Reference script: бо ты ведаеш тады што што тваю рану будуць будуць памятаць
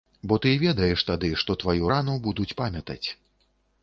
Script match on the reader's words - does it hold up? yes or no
no